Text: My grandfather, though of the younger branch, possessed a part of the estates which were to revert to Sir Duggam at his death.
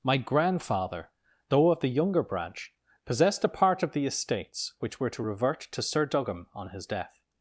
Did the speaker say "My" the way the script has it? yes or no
yes